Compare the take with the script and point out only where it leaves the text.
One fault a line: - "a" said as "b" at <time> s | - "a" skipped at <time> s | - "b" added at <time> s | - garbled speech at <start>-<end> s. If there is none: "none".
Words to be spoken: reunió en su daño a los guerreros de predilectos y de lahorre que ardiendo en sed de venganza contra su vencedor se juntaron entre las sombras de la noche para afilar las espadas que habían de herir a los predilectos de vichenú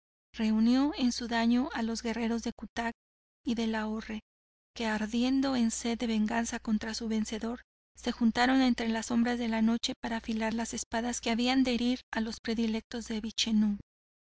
- "predilectos" said as "cutac" at 2.5 s